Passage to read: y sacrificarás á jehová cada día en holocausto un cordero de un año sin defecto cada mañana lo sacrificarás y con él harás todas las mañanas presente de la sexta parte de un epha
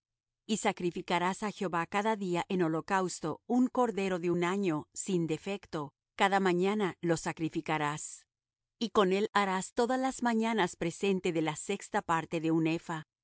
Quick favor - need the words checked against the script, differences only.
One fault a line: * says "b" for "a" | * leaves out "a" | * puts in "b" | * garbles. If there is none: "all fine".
all fine